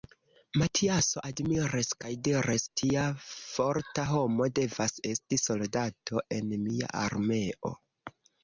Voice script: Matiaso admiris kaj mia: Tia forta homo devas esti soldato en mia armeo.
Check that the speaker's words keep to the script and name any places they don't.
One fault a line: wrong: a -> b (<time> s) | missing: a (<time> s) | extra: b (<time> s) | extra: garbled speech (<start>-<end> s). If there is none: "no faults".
wrong: mia -> diris (2.3 s)